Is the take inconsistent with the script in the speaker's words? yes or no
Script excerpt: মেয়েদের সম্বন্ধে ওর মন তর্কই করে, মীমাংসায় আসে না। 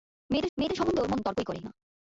yes